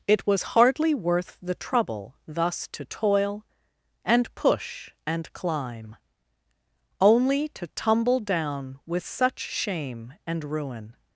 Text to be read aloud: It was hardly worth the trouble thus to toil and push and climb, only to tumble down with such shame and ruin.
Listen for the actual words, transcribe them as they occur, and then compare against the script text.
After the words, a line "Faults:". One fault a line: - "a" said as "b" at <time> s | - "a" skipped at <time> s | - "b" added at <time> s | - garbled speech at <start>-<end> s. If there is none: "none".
It was hardly worth the trouble thus to toil and push and climb, only to tumble down with such shame and ruin.
Faults:
none